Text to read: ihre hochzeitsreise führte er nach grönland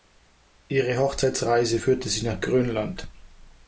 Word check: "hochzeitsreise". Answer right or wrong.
right